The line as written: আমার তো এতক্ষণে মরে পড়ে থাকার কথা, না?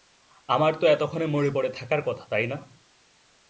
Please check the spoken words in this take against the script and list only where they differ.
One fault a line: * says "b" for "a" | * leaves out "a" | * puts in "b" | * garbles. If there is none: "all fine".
* puts in "তাই"